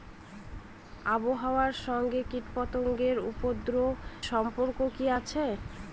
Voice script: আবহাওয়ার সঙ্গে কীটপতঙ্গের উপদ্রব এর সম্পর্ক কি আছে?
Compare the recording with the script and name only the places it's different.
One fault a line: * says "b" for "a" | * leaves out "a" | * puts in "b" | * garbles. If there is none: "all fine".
* leaves out "এর"